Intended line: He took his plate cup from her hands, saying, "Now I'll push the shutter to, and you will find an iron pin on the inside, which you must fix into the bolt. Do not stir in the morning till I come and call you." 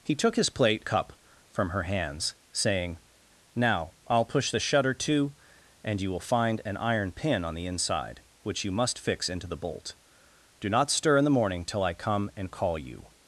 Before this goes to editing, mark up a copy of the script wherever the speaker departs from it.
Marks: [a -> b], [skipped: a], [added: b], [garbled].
He took his plate cup from her hands, saying, "Now I'll push the shutter to, and you will find an iron pin on the inside, which you must fix into the bolt. Do not stir in the morning till I come and call you."